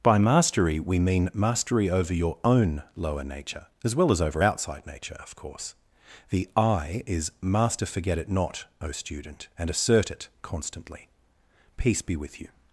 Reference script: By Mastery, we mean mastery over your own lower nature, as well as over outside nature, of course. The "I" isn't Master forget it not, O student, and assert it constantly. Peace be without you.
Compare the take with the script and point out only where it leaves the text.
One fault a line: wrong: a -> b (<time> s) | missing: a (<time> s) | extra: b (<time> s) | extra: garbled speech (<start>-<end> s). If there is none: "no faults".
wrong: isn't -> is (7.0 s)
wrong: without -> with (12.1 s)